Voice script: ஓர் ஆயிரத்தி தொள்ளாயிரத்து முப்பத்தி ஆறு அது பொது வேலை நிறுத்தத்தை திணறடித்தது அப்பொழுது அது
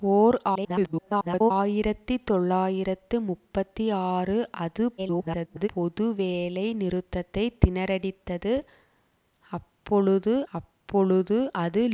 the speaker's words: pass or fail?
fail